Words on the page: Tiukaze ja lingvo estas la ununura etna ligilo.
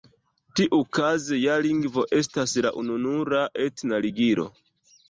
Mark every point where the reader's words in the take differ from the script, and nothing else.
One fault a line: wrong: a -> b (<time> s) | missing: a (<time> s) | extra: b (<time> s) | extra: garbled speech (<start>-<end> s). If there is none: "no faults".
no faults